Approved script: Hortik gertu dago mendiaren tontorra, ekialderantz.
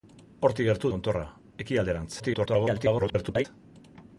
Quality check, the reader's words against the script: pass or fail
fail